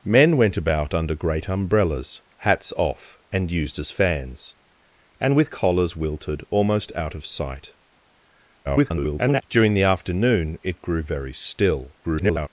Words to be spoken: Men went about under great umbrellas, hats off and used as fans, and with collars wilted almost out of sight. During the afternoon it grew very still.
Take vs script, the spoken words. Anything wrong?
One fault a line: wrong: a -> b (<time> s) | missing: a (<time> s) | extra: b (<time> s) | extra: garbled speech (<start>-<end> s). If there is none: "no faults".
extra: garbled speech (8.6-9.4 s)
extra: garbled speech (12.0-12.5 s)